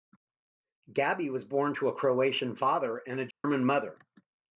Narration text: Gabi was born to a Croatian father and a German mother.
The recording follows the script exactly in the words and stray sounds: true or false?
false